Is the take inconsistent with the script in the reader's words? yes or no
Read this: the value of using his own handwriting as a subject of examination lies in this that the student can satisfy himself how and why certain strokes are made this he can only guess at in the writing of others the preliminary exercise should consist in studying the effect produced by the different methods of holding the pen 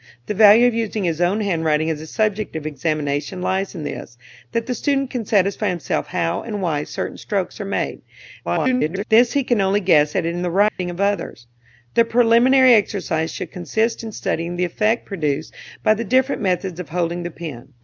yes